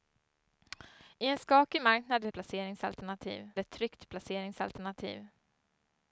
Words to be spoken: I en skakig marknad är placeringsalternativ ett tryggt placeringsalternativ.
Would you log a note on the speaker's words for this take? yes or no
no